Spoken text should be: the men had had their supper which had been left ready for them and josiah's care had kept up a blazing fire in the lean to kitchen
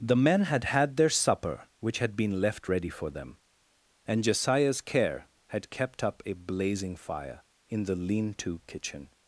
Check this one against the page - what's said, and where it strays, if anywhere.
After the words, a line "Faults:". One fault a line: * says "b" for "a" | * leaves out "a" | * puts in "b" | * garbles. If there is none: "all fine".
the men had had their supper which had been left ready for them and josiah's care had kept up a blazing fire in the lean to kitchen
Faults:
all fine